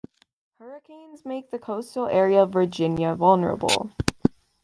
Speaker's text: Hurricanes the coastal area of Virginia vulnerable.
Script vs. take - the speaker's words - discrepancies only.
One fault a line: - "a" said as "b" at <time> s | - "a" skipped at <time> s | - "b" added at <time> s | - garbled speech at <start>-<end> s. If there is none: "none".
- "make" added at 1.2 s